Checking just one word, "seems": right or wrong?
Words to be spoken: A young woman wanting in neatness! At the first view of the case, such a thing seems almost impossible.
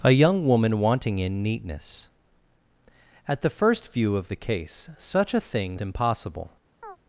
wrong